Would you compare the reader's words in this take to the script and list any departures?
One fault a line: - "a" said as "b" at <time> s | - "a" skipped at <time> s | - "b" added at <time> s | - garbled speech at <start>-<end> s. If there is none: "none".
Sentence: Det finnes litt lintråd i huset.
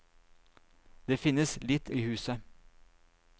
- "lintråd" skipped at 1.9 s